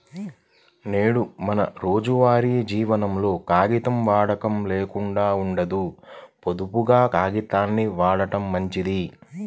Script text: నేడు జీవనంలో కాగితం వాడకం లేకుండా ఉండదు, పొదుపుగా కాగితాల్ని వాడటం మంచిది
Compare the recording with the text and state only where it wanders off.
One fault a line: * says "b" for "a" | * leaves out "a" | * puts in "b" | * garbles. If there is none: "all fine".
* puts in "మన రోజువారీ"